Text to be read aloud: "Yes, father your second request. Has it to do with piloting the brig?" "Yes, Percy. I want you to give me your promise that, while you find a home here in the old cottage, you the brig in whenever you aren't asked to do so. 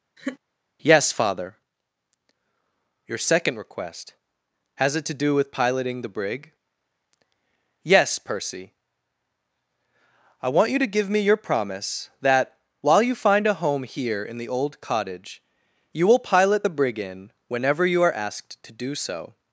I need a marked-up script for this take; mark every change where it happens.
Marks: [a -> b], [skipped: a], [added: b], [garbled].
"Yes, father your second request. Has it to do with piloting the brig?" "Yes, Percy. I want you to give me your promise that, while you find a home here in the old cottage, you [added: will pilot] the brig in whenever you [aren't -> are] asked to do so.